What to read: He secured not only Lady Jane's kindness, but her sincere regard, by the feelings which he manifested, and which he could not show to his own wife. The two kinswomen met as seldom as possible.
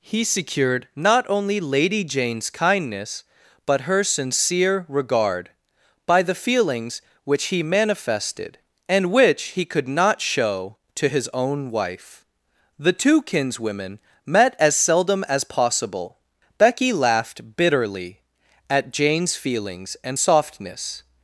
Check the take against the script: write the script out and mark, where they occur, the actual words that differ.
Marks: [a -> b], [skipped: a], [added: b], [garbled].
He secured not only Lady Jane's kindness, but her sincere regard, by the feelings which he manifested, and which he could not show to his own wife. The two kinswomen met as seldom as possible. [added: Becky laughed bitterly at Jane's feelings and softness]